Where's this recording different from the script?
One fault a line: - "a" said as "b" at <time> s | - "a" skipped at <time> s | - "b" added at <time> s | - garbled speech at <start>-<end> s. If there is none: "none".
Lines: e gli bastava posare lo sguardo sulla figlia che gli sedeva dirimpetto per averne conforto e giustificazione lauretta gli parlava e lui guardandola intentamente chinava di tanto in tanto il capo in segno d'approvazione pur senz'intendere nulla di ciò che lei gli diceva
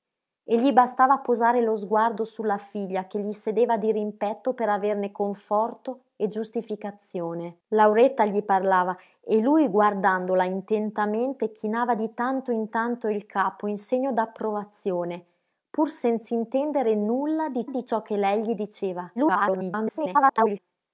- "di" added at 17.7 s
- garbled speech at 19.2-20.6 s